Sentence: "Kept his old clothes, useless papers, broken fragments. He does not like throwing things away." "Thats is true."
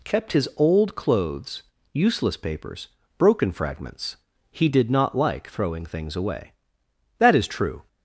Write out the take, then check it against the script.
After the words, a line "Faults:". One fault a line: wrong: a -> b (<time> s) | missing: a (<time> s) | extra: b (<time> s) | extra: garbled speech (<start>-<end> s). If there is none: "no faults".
"Kept his old clothes, useless papers, broken fragments. He did not like throwing things away." "That is true."
Faults:
wrong: does -> did (4.7 s)
wrong: Thats -> That (7.2 s)